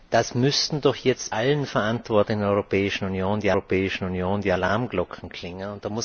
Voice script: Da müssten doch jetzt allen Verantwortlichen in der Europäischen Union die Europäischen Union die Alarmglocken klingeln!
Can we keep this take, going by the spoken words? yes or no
yes